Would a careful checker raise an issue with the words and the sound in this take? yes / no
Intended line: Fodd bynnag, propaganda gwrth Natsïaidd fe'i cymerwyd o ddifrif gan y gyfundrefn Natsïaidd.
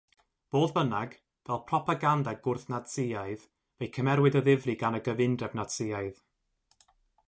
yes